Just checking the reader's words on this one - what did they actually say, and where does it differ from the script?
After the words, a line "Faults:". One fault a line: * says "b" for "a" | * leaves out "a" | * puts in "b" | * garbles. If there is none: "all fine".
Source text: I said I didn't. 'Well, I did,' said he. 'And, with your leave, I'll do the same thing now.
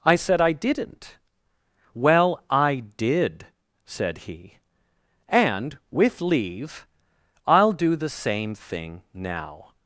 I said I didn't. 'Well, I did,' said he. 'And, with leave, I'll do the same thing now.
Faults:
* leaves out "your"